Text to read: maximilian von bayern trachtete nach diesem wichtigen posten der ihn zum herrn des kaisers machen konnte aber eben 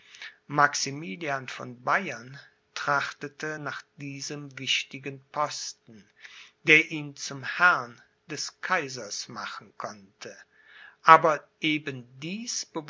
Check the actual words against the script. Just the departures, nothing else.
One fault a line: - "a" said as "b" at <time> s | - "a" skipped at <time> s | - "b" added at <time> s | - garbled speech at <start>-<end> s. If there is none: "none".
none